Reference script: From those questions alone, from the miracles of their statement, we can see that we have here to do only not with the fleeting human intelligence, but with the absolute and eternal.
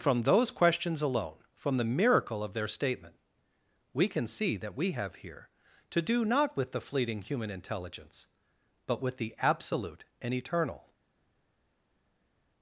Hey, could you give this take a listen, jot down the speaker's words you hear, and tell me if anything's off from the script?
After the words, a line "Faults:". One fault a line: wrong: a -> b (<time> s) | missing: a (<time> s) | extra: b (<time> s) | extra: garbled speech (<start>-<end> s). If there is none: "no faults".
From those questions alone, from the miracle of their statement, we can see that we have here to do not with the fleeting human intelligence, but with the absolute and eternal.
Faults:
wrong: miracles -> miracle (1.9 s)
missing: only (6.2 s)